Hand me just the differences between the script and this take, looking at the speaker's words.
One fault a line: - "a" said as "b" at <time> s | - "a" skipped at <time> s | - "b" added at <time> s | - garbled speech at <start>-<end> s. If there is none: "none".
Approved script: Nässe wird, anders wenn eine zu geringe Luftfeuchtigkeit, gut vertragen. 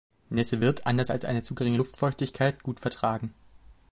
- "wenn" said as "als" at 1.1 s